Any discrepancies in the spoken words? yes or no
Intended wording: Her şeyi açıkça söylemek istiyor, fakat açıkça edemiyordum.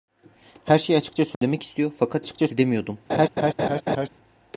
no